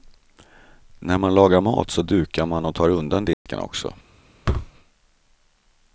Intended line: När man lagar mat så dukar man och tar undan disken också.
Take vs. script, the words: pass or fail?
pass